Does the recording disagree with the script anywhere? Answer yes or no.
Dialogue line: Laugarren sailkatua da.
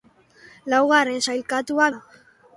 no